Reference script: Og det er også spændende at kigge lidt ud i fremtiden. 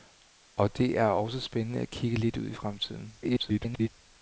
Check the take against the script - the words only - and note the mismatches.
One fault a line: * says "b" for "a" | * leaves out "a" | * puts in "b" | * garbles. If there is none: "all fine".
* garbles